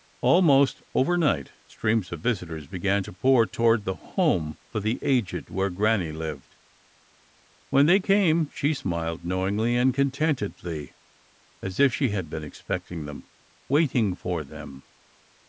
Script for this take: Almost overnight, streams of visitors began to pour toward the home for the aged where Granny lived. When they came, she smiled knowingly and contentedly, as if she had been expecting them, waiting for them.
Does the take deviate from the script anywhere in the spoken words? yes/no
no